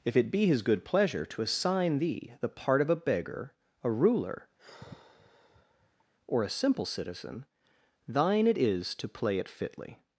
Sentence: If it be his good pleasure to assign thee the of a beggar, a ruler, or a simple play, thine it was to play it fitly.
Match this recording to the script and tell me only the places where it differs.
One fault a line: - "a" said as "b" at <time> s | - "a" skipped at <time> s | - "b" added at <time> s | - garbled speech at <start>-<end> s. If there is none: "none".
- "part" added at 2.5 s
- "play" said as "citizen" at 6.9 s
- "was" said as "is" at 8.6 s